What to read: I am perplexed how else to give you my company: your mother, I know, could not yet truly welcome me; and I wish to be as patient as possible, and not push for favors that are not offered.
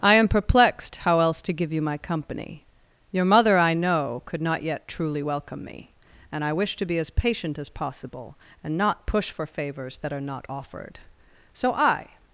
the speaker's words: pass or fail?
fail